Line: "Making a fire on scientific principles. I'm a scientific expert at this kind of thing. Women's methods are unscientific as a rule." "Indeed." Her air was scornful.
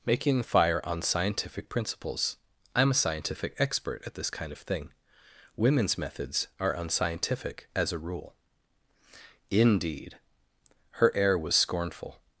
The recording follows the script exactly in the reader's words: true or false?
false